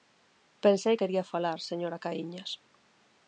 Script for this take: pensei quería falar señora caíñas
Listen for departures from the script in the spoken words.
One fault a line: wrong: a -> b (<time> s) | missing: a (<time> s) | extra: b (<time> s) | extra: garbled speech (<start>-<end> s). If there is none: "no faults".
no faults